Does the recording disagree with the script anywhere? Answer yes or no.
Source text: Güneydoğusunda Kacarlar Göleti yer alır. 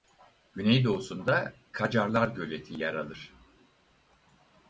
no